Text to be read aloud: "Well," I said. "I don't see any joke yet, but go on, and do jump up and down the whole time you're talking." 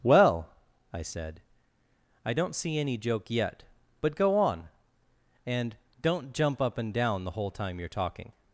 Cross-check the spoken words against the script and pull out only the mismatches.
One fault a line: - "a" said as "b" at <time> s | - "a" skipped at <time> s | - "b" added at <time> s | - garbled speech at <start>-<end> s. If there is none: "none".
- "do" said as "don't" at 6.0 s